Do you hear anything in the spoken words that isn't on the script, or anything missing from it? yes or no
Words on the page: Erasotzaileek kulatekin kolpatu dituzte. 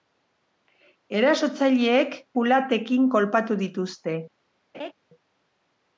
no